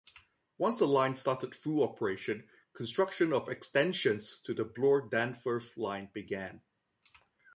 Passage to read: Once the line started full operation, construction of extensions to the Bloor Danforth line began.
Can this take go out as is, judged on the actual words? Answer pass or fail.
pass